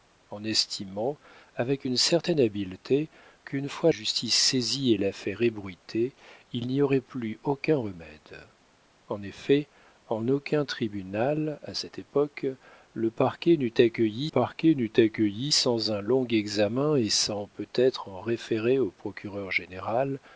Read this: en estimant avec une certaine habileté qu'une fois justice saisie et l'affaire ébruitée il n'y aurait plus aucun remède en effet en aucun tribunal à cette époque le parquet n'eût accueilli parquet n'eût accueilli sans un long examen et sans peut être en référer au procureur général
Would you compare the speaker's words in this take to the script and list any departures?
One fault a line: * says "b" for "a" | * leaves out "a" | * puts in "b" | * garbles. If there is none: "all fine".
all fine